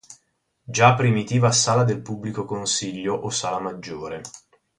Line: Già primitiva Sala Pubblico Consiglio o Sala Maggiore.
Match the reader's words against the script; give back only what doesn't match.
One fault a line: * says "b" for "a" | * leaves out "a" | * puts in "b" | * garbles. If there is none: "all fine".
* puts in "del"